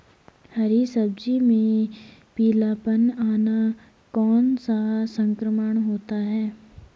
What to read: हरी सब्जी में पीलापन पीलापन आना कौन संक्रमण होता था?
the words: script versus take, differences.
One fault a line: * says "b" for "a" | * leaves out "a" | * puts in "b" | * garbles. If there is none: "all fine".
* leaves out "पीलापन"
* puts in "सा"
* says "है" for "था"